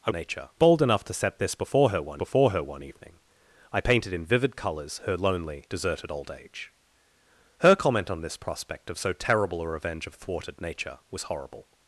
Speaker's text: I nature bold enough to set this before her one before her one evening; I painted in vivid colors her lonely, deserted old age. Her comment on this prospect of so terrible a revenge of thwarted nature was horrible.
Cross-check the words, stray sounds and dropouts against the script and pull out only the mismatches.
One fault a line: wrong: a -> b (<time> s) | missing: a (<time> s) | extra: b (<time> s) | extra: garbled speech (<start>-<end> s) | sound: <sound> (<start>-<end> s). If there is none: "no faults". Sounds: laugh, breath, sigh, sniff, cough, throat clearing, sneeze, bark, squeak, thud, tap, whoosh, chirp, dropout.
no faults